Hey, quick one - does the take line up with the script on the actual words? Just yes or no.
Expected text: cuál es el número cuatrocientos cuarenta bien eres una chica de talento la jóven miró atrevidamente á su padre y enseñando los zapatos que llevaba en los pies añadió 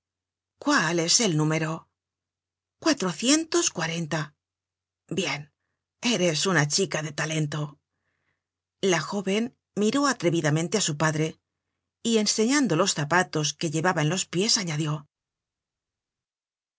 yes